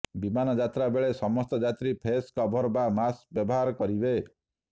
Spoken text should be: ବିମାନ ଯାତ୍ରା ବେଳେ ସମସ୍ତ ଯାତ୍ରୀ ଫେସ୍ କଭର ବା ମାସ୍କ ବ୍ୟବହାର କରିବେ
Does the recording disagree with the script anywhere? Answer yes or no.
no